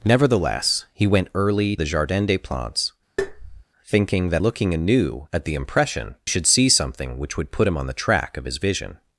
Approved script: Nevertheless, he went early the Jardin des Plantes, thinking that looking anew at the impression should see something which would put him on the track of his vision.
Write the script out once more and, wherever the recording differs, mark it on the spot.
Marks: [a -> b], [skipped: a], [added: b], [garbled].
Nevertheless, he went early the Jardin des Plantes, thinking that looking anew at the impression should see something which would put him on the track of his vision.